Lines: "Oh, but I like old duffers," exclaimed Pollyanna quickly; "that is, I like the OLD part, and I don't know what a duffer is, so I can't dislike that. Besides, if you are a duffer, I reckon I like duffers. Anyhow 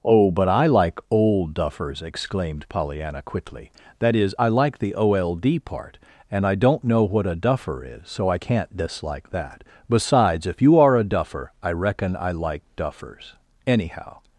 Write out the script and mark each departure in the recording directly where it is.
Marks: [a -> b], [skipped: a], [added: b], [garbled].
"Oh, but I like old duffers," exclaimed Pollyanna quickly; "that is, I like the OLD part, and I don't know what a duffer is, so I can't dislike that. Besides, if you are a duffer, I reckon I like duffers. Anyhow